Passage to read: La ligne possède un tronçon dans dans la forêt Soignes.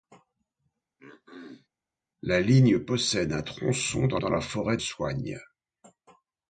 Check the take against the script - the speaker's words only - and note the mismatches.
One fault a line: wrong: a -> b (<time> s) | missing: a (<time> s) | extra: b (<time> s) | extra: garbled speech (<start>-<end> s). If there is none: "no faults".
no faults